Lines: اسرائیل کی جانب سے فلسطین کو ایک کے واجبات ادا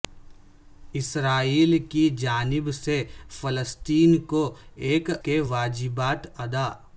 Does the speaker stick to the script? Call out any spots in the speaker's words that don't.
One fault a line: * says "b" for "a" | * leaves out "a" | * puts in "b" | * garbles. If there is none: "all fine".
all fine